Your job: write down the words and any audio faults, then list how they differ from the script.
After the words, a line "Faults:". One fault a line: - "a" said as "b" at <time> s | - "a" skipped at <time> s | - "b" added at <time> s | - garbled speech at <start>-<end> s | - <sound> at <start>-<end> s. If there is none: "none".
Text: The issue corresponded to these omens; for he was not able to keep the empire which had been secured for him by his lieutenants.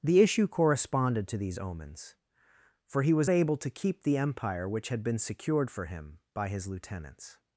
The issue corresponded to these omens; for he was able to keep the empire which had been secured for him by his lieutenants.
Faults:
- "not" skipped at 3.3 s